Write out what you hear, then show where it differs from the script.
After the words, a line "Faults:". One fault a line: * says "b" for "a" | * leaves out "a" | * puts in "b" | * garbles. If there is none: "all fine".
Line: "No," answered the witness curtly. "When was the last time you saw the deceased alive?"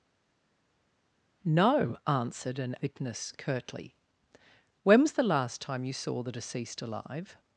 "No," answered an witness curtly. "When was the last time you saw the deceased alive?"
Faults:
* says "an" for "the"